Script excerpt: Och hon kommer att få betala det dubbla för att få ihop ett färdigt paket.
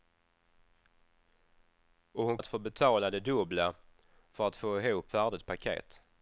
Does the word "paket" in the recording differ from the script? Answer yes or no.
no